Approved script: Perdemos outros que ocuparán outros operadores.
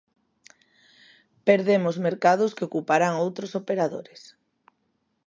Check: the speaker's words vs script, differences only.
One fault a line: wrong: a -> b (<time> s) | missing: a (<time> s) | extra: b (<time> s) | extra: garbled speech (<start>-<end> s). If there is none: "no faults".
wrong: outros -> mercados (2.1 s)